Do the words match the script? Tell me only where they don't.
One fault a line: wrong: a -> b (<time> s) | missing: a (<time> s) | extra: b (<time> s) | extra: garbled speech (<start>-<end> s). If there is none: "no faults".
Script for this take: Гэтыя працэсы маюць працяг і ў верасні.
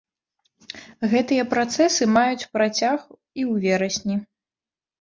no faults